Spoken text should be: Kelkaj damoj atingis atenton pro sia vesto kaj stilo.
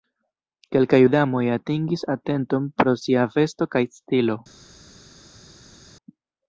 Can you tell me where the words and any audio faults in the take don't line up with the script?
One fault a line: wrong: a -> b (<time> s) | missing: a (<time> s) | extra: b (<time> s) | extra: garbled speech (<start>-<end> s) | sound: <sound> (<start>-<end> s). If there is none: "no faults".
no faults